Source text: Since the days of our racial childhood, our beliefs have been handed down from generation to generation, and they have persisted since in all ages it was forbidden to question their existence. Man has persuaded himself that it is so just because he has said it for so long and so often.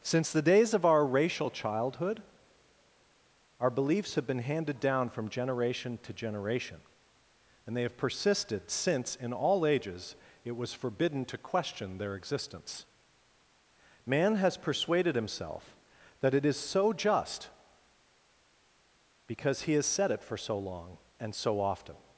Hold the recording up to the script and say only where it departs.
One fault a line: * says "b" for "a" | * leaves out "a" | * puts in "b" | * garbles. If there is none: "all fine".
all fine